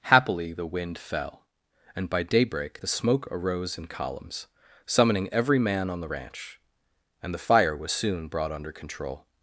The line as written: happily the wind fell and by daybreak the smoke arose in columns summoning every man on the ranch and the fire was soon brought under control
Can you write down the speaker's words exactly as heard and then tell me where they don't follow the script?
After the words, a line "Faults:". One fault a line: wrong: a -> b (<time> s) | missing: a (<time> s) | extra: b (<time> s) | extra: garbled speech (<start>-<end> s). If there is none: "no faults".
happily the wind fell and by daybreak the smoke arose in columns summoning every man on the ranch and the fire was soon brought under control
Faults:
no faults